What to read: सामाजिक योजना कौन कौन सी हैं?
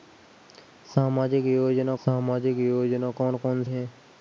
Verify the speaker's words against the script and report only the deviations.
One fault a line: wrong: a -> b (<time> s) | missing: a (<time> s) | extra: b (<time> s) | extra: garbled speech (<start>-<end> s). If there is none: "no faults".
extra: सामाजिक योजना (2.1 s)
missing: सी (3.6 s)